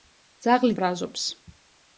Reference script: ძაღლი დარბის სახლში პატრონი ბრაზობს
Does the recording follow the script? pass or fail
fail